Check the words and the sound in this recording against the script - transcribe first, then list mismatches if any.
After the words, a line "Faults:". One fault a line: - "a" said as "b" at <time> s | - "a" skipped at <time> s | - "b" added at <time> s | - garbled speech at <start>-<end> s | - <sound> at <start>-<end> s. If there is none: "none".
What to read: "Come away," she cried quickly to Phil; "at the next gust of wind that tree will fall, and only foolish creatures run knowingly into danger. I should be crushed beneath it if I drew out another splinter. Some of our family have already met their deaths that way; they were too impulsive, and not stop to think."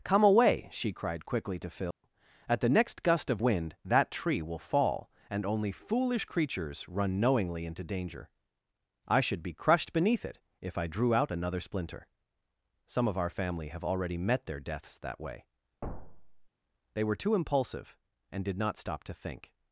"Come away," she cried quickly to Phil; "at the next gust of wind that tree will fall, and only foolish creatures run knowingly into danger. I should be crushed beneath it if I drew out another splinter. Some of our family have already met their deaths that way; they were too impulsive, and did not stop to think."
Faults:
- dropout at 1.9-2.0 s
- thud at 15.8-16.5 s
- "did" added at 18.4 s